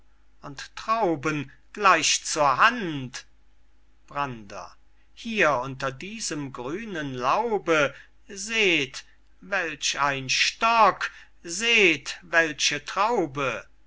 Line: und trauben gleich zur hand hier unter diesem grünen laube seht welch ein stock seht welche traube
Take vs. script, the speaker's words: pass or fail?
fail